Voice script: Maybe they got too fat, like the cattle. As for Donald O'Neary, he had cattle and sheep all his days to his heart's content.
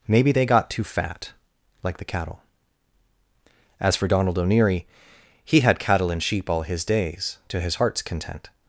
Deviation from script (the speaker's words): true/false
false